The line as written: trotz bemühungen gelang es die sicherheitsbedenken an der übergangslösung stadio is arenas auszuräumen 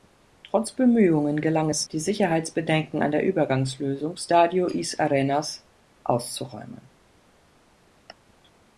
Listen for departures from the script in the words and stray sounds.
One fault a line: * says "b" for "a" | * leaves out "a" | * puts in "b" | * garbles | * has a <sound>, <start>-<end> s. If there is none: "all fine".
all fine